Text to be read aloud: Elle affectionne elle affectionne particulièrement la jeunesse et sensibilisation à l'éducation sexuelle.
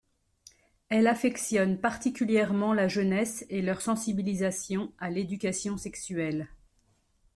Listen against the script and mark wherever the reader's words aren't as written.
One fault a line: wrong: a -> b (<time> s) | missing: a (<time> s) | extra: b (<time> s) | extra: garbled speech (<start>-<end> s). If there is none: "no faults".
missing: elle affectionne (1.8 s)
extra: leur (3.6 s)